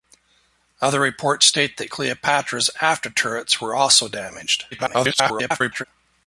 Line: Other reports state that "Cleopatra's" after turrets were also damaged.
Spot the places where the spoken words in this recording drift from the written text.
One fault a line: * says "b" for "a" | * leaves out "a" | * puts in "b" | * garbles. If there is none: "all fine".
* garbles